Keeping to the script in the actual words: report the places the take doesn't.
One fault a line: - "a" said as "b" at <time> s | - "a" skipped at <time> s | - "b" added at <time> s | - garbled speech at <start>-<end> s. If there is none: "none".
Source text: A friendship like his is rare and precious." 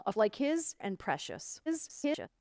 - "friendship" skipped at 0.1 s
- "is rare" skipped at 0.8 s
- garbled speech at 1.7-2.3 s